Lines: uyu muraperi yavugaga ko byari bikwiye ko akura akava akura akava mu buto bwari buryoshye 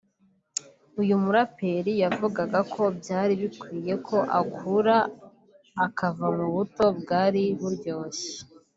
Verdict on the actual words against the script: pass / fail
fail